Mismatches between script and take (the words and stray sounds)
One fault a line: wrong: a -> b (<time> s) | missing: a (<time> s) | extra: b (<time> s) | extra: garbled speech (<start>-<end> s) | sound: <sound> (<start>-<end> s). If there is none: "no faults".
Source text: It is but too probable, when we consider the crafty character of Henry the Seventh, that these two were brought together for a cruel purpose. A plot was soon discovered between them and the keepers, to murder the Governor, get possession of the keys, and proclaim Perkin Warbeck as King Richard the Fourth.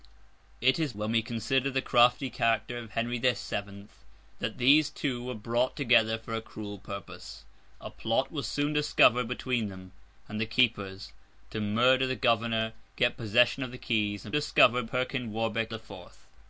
missing: but too probable (0.9 s)
wrong: proclaim -> discovered (14.3 s)
missing: as King Richard (15.7 s)